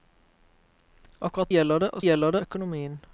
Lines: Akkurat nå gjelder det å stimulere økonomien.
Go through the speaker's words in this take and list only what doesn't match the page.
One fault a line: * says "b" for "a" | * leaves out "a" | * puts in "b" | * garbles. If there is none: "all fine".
* leaves out "nå"
* says "gjelder" for "stimulere"